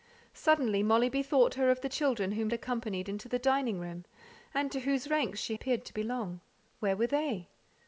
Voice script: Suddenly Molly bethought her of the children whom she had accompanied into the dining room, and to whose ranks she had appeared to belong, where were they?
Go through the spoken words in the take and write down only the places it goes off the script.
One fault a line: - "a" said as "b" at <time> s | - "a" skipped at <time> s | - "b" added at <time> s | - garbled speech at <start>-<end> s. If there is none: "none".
- "she had" skipped at 2.5 s
- "had" skipped at 5.6 s